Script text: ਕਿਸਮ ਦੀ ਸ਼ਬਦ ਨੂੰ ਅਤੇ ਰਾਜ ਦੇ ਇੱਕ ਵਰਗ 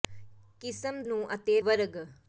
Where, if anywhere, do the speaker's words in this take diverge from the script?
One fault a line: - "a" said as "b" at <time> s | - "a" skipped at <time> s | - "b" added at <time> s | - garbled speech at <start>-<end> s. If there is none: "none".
- "ਦੀ ਸ਼ਬਦ" skipped at 1.0 s
- "ਰਾਜ ਦੇ ਇੱਕ" skipped at 1.6 s